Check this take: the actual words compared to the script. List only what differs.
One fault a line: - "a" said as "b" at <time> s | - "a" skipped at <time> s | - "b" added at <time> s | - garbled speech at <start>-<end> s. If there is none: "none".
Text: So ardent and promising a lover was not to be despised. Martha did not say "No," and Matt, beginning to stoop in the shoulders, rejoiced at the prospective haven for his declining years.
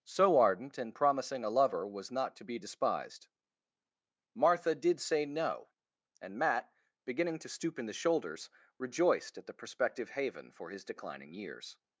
- "not" skipped at 5.0 s